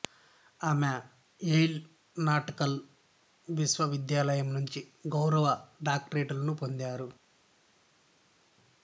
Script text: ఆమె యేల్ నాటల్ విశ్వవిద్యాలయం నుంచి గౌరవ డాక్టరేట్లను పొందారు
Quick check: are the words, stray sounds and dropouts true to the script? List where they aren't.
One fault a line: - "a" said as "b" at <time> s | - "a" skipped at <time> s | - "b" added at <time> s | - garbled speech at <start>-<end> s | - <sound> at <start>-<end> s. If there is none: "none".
none